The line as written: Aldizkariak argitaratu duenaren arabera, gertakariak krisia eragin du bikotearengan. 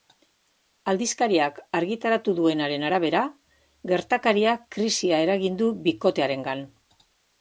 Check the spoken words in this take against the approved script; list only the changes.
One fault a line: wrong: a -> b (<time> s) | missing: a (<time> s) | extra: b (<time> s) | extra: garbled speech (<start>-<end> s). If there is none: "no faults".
no faults